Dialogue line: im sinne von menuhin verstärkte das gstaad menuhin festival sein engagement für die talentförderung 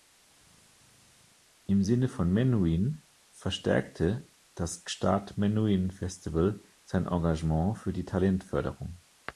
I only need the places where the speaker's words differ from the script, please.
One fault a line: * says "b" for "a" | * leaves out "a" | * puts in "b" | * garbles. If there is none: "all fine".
all fine